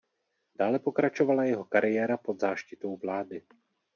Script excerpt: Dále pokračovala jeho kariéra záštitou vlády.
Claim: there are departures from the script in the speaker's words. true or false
true